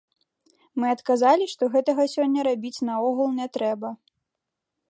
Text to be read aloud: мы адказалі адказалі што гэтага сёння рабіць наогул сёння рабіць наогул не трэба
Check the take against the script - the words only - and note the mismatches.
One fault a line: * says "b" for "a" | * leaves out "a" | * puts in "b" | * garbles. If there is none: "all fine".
* leaves out "адказалі"
* leaves out "сёння рабіць наогул"